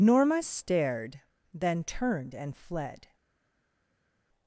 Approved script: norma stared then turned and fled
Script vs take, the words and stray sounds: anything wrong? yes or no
no